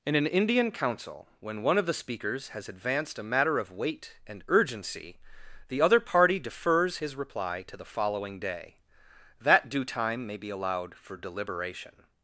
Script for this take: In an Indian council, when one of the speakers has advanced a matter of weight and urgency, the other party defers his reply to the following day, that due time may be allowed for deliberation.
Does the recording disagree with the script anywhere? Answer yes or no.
no